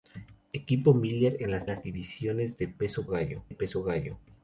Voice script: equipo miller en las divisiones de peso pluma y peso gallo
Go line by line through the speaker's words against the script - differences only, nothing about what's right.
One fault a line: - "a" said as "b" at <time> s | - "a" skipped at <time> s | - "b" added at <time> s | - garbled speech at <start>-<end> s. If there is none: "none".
- "las" added at 1.7 s
- "pluma" said as "gallo" at 3.1 s